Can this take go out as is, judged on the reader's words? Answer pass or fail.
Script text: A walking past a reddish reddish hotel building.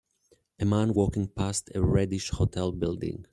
fail